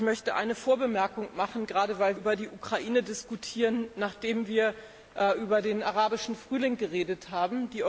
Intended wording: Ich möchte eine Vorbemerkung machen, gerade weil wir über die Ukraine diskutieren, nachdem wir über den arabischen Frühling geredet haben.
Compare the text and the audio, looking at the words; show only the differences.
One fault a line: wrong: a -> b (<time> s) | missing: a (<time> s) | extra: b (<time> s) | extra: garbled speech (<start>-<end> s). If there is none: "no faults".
missing: wir (2.2 s)